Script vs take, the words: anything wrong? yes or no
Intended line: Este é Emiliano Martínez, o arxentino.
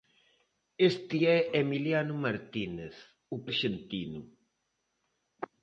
no